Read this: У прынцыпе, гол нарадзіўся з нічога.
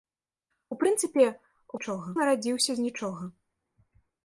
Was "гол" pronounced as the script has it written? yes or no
no